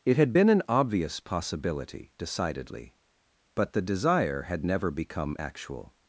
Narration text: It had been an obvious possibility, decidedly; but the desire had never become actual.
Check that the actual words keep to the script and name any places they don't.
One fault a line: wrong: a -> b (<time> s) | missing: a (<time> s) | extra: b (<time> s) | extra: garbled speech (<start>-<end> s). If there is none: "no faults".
no faults